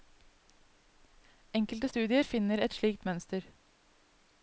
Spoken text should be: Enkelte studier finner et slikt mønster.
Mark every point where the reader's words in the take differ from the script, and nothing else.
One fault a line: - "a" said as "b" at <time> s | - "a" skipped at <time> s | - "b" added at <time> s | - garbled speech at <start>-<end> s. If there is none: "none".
none